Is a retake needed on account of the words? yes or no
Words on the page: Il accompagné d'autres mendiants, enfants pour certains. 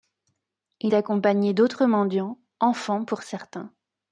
no